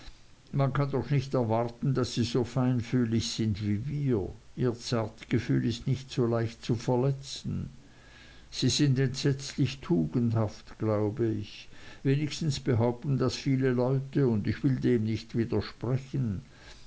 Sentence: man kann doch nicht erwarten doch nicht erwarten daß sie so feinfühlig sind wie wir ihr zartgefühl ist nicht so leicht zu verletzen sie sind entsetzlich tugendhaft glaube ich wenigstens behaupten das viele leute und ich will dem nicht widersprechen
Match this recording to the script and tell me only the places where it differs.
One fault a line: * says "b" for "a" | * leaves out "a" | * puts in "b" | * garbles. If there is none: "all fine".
* leaves out "doch nicht erwarten"